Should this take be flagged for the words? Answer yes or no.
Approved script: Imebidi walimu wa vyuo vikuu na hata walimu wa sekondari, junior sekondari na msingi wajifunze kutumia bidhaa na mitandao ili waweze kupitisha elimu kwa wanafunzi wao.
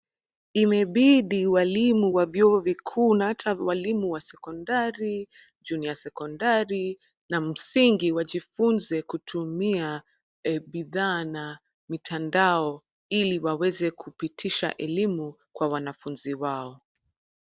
no